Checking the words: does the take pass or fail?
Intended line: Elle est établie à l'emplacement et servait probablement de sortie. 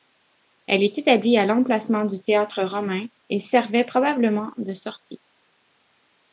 fail